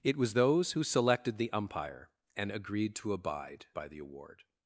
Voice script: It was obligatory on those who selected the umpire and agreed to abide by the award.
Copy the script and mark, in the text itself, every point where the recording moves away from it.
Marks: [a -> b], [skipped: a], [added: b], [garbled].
It was [skipped: obligatory on] those who selected the umpire and agreed to abide by the award.